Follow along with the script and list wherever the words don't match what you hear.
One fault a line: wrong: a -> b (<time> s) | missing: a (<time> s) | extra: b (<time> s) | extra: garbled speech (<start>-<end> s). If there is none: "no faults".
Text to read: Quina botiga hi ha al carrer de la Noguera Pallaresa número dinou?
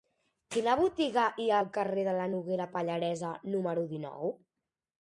no faults